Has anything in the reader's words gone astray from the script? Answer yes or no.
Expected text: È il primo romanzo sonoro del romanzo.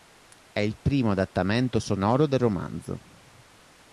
yes